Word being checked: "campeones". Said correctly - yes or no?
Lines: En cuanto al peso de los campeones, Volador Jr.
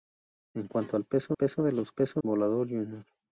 no